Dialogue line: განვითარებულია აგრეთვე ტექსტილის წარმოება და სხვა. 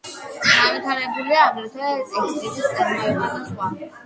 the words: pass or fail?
pass